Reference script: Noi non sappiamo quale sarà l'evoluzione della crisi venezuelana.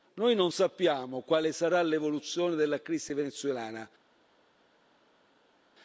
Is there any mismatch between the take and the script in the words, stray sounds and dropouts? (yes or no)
no